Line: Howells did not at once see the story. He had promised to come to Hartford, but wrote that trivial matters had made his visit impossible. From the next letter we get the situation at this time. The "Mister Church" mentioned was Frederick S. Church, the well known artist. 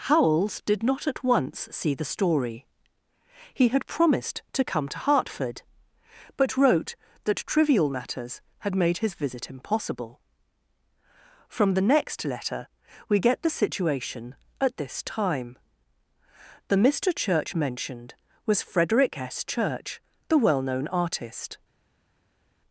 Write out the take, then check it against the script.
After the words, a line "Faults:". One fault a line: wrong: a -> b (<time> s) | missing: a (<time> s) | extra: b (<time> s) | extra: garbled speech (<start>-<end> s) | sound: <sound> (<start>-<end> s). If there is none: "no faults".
Howells did not at once see the story. He had promised to come to Hartford, but wrote that trivial matters had made his visit impossible. From the next letter we get the situation at this time. The "Mister Church" mentioned was Frederick S. Church, the well known artist.
Faults:
no faults